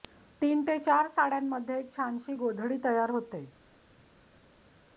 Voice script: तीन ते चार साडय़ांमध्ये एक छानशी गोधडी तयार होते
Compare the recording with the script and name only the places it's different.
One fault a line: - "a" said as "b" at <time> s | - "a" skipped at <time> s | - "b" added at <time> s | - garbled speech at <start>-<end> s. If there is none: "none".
none